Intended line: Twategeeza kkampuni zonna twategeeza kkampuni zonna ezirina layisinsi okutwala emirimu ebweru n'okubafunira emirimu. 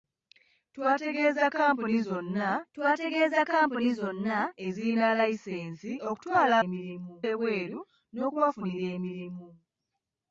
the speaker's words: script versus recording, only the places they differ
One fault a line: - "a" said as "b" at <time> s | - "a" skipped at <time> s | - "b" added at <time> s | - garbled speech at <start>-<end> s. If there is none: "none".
none